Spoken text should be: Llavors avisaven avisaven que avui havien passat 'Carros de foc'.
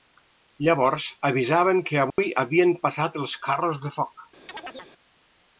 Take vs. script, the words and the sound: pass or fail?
fail